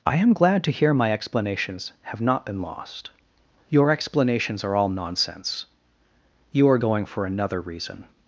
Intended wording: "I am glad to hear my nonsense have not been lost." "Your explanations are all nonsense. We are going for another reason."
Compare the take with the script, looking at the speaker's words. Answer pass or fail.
fail